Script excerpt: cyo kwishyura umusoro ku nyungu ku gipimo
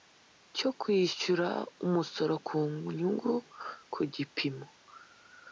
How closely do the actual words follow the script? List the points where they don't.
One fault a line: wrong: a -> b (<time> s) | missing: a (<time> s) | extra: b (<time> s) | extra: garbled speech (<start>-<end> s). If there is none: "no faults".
no faults